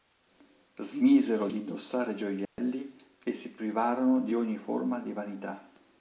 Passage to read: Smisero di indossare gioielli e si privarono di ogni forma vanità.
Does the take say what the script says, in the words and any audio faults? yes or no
no